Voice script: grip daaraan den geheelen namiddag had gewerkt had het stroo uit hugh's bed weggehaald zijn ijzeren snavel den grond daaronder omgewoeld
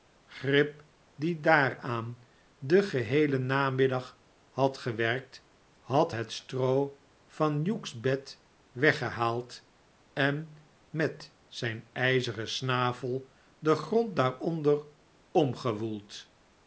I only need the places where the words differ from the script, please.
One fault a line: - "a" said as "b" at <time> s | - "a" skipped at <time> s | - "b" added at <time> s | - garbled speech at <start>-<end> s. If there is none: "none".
- "die" added at 1.1 s
- "uit" said as "van" at 7.3 s
- "en met" added at 10.1 s